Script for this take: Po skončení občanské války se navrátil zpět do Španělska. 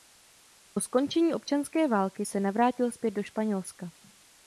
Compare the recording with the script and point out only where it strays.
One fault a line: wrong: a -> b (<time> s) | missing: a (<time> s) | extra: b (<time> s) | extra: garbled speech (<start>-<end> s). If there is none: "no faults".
no faults